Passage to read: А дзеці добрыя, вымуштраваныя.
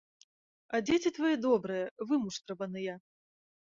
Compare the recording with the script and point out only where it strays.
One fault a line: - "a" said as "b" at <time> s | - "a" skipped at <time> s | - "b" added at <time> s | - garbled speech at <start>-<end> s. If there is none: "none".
- "твае" added at 1.2 s